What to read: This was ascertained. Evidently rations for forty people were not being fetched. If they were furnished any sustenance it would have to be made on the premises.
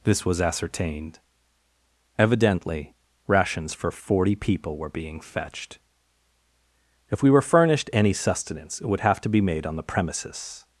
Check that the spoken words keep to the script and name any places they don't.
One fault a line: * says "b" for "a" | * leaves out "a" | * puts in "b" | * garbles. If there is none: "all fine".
* leaves out "not"
* says "we" for "they"